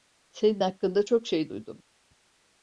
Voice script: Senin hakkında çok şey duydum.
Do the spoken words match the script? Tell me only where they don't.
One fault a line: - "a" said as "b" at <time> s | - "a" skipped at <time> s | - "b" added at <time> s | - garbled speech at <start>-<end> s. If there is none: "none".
none